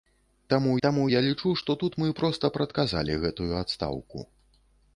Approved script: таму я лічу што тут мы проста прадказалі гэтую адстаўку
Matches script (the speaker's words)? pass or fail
fail